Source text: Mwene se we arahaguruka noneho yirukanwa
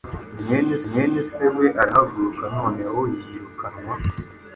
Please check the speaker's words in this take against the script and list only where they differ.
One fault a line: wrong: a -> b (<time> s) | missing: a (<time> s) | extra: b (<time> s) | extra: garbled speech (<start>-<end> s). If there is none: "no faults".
extra: mwene (0.9 s)